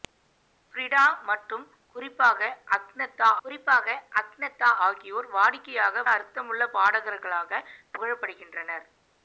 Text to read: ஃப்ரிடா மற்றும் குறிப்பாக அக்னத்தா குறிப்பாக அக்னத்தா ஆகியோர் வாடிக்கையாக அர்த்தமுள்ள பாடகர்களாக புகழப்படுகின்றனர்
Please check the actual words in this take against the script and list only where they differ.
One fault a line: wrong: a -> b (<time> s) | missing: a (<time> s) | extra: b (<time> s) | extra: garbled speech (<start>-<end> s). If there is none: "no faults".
no faults